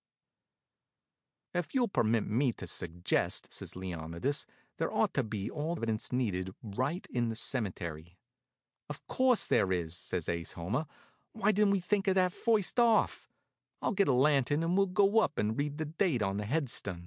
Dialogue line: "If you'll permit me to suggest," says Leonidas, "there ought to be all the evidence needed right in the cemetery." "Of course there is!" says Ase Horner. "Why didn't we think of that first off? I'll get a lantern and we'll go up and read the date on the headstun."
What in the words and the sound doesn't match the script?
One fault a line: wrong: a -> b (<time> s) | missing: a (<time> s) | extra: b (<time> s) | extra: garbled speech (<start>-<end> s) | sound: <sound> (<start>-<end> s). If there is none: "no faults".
missing: the (5.7 s)